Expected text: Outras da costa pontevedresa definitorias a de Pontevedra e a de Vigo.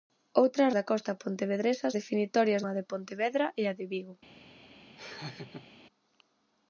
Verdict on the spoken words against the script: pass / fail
pass